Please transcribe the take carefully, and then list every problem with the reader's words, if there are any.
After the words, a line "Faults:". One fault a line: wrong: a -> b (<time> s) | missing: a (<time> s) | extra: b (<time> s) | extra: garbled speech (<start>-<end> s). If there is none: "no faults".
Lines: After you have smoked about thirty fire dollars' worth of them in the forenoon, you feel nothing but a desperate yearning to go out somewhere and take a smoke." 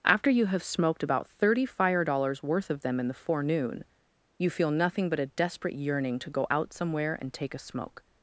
After you have smoked about thirty fire dollars' worth of them in the forenoon, you feel nothing but a desperate yearning to go out somewhere and take a smoke."
Faults:
no faults